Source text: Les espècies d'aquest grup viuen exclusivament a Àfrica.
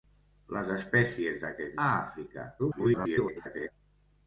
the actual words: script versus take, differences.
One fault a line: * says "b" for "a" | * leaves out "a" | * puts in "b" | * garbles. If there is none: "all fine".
* leaves out "grup viuen exclusivament"
* garbles